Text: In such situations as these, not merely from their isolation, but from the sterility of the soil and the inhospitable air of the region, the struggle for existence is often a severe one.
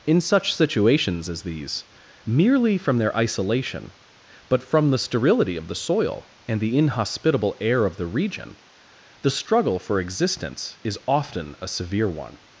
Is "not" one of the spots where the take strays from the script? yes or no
yes